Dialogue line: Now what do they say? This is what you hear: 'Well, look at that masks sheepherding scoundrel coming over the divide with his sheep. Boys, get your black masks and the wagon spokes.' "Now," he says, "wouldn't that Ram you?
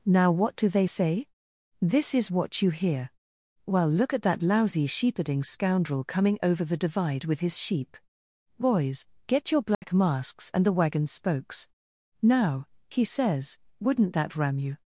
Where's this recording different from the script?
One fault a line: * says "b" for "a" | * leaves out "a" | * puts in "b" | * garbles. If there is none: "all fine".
* says "lousy" for "masks"